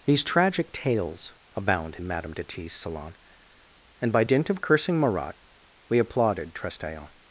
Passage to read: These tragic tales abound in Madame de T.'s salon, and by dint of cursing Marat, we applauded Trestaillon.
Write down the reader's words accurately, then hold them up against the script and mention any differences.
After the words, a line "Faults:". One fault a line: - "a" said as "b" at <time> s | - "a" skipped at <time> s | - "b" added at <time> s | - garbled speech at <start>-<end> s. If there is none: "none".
These tragic tales abound in Madame de T.'s salon, and by dint of cursing Marat, we applauded Trestaillon.
Faults:
none